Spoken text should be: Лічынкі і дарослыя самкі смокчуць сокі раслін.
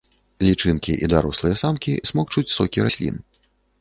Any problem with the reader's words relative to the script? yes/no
no